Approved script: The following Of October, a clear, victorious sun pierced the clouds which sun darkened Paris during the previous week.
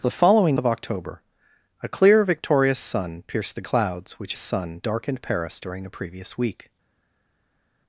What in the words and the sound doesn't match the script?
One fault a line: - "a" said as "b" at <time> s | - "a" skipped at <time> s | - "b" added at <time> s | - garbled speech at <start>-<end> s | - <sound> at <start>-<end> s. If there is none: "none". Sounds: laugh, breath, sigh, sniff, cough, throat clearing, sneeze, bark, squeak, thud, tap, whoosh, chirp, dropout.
none